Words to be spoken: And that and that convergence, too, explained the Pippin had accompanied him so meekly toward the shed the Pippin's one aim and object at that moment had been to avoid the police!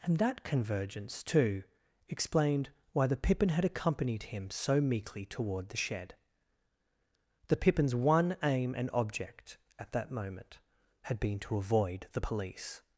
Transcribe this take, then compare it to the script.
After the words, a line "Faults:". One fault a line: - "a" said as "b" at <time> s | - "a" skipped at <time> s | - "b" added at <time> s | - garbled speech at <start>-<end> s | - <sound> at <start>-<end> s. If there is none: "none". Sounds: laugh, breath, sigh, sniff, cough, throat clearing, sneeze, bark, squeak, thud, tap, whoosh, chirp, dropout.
And that convergence, too, explained why the Pippin had accompanied him so meekly toward the shed the Pippin's one aim and object at that moment had been to avoid the police!
Faults:
- "and that" skipped at 0.4 s
- "why" added at 2.9 s